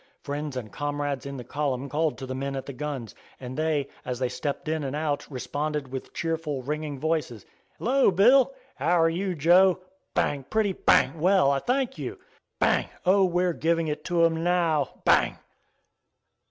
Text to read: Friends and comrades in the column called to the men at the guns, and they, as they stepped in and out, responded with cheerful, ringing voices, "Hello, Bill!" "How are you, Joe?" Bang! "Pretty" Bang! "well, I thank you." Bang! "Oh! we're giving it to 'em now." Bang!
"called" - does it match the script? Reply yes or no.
yes